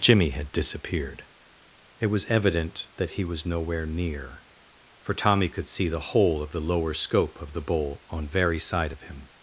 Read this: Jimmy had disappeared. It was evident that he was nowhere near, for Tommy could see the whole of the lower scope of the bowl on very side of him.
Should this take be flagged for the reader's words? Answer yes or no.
no